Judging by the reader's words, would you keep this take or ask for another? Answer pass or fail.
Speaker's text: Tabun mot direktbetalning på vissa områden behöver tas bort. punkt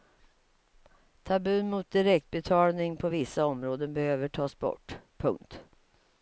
pass